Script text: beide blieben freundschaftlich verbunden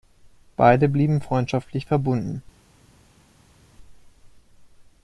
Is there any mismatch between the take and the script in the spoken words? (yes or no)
no